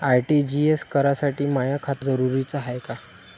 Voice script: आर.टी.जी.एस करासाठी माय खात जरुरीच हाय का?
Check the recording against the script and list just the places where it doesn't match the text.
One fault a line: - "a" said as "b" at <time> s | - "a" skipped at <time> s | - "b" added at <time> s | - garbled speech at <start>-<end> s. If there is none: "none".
none